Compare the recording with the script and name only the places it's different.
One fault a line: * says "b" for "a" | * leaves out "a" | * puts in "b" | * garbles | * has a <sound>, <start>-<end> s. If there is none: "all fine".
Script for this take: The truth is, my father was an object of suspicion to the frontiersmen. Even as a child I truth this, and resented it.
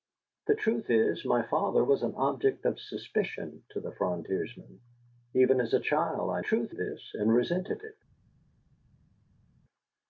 all fine